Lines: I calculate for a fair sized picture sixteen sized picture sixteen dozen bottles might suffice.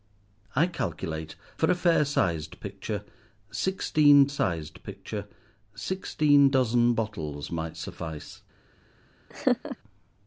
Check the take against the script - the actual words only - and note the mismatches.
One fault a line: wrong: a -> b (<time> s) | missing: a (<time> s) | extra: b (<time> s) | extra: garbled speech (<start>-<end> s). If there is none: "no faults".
no faults